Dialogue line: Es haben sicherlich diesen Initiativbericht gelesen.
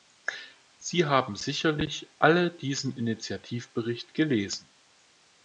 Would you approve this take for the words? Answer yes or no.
no